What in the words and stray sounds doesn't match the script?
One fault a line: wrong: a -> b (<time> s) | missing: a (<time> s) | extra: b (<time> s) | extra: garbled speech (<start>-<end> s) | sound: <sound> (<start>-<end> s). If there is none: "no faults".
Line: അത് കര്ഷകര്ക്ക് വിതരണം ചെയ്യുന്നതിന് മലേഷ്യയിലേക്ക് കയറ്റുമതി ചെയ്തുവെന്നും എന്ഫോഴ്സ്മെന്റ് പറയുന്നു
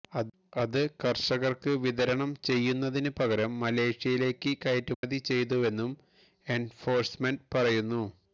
extra: പകരം (3.2 s)
sound: dropout (4.9-5.0 s)